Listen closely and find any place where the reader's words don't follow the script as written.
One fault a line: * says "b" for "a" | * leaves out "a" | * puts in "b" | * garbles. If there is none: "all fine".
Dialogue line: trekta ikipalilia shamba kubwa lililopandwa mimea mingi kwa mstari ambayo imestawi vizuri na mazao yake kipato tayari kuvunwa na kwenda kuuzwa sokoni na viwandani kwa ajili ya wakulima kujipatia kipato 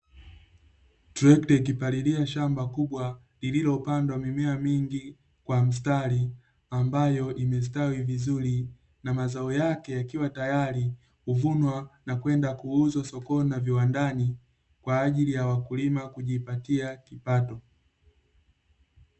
* says "yakiwa" for "kipato"